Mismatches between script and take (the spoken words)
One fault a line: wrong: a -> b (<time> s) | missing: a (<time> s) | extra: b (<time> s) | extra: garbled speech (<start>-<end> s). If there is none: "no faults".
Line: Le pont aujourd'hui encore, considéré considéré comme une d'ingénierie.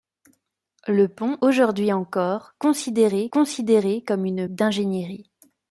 no faults